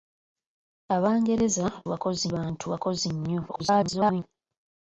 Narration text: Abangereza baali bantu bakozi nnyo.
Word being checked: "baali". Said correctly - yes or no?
no